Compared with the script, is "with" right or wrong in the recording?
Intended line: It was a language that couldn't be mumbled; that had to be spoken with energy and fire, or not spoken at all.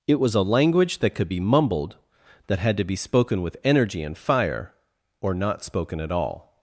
right